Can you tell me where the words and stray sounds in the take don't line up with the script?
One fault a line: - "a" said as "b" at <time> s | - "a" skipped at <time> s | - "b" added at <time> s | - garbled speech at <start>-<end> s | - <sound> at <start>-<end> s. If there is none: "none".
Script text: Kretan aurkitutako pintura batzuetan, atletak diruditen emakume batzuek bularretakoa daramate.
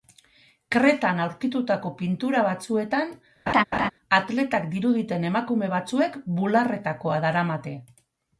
- laugh at 3.5-3.9 s